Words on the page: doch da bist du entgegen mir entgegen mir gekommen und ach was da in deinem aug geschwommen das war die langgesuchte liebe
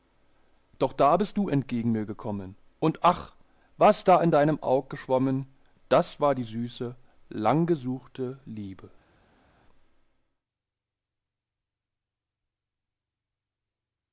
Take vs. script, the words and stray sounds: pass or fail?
fail